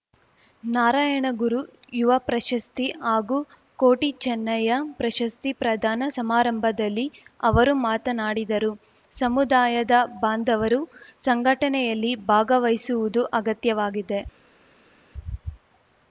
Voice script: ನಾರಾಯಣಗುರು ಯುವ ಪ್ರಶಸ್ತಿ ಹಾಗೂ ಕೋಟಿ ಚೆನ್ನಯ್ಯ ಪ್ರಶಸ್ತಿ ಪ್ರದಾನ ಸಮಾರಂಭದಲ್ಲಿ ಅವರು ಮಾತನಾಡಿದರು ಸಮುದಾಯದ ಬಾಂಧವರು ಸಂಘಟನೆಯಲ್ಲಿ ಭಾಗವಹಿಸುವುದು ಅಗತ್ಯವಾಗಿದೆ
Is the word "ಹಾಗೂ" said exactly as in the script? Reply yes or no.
yes